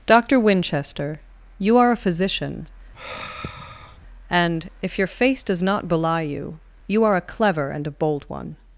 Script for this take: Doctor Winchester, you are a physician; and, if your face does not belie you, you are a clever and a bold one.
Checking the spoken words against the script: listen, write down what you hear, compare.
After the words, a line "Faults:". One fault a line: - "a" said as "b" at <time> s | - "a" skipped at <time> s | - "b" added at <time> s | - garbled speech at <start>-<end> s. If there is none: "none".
Doctor Winchester, you are a physician; and, if your face does not belie you, you are a clever and a bold one.
Faults:
none